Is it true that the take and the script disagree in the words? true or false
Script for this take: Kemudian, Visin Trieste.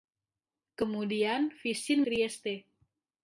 false